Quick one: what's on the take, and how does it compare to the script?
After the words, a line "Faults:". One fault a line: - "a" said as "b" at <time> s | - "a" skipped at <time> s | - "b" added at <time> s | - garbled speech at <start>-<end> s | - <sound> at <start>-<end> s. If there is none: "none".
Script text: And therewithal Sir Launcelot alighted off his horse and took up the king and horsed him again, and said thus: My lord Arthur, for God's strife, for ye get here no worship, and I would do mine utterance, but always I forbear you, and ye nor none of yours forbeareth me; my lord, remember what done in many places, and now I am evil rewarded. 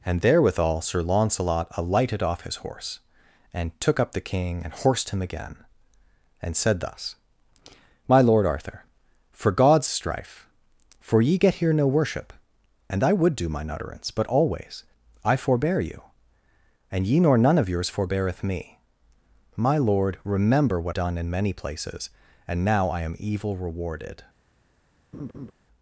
And therewithal Sir Launcelot alighted off his horse and took up the king and horsed him again, and said thus: My lord Arthur, for God's strife, for ye get here no worship, and I would do mine utterance, but always I forbear you, and ye nor none of yours forbeareth me; my lord, remember what done in many places, and now I am evil rewarded.
Faults:
- laugh at 25.1-25.5 s